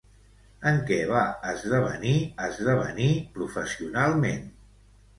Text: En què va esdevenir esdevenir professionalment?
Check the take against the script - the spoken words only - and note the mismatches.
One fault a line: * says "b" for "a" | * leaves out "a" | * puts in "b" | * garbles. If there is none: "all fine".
all fine